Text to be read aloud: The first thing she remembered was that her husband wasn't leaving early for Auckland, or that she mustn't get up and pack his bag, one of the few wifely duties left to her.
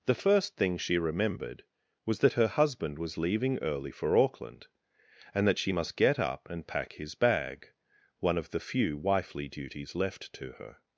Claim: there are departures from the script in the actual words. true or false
true